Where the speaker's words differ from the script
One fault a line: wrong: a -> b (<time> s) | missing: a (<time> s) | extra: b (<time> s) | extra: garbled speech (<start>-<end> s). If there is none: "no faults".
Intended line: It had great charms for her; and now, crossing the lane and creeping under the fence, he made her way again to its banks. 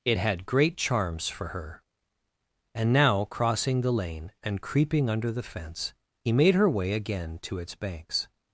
no faults